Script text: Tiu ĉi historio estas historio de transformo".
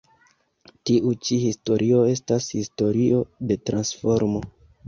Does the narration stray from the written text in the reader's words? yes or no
no